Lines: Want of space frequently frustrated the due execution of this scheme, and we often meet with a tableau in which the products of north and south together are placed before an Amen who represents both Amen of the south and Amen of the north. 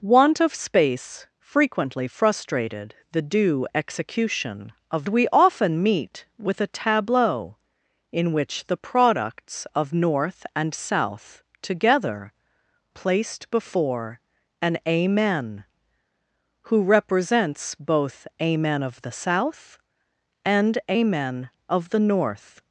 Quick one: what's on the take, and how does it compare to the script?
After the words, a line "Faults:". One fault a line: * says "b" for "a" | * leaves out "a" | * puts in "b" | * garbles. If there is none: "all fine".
Want of space frequently frustrated the due execution of we often meet with a tableau in which the products of north and south together placed before an Amen who represents both Amen of the south and Amen of the north.
Faults:
* leaves out "this scheme and"
* leaves out "are"